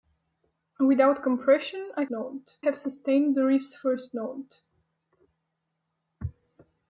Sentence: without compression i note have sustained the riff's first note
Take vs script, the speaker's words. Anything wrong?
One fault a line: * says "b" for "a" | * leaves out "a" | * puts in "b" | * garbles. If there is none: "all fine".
all fine